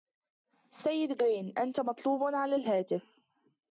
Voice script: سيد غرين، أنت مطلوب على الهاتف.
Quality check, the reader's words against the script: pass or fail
pass